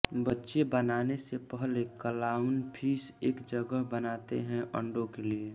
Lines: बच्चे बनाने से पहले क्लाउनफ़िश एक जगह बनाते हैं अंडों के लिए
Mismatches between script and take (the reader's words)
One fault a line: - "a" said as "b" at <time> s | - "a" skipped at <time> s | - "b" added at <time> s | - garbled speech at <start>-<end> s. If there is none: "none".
none